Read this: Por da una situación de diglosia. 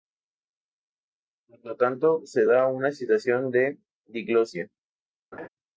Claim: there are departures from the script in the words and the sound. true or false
true